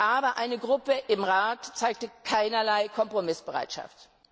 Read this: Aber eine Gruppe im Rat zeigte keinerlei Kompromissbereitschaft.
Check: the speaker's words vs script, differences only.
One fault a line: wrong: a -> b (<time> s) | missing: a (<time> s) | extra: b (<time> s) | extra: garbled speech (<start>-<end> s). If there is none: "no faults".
no faults